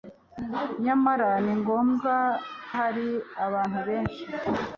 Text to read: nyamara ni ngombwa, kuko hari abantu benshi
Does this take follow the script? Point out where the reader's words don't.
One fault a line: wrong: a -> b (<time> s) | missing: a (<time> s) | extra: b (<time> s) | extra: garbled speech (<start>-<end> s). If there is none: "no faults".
missing: kuko (2.1 s)